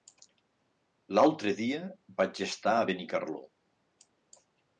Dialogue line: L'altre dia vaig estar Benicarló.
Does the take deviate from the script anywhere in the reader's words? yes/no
yes